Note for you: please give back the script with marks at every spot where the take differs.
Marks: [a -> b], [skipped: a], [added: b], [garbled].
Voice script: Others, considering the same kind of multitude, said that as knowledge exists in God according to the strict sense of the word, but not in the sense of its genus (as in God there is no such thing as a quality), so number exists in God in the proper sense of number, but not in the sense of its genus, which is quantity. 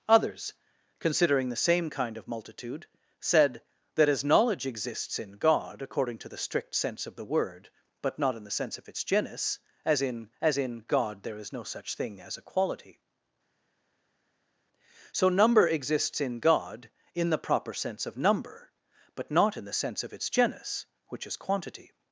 Others, considering the same kind of multitude, said that as knowledge exists in God according to the strict sense of the word, but not in the sense of its genus (as in [added: as in] God there is no such thing as a quality), so number exists in God in the proper sense of number, but not in the sense of its genus, which is quantity.